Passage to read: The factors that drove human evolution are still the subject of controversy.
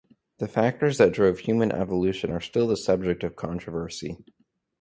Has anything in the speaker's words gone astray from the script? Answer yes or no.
no